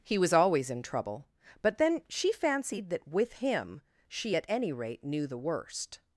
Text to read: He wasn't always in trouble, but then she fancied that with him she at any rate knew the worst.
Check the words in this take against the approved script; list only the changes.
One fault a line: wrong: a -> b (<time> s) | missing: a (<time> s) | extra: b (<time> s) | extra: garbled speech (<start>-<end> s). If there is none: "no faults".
wrong: wasn't -> was (0.2 s)